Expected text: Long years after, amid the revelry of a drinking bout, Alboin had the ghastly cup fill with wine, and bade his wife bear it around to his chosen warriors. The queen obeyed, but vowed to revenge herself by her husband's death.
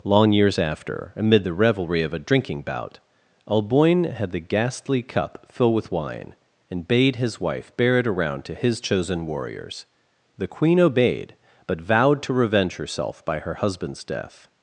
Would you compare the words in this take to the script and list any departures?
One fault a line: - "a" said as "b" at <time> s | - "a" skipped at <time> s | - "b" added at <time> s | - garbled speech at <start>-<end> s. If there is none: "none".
none